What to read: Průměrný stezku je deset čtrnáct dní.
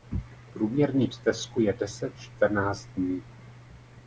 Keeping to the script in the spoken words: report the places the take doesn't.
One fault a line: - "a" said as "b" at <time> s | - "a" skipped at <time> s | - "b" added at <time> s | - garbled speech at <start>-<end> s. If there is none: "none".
none